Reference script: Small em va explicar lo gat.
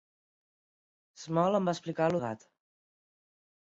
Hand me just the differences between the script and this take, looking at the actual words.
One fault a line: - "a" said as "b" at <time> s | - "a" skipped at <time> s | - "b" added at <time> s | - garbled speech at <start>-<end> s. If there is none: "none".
none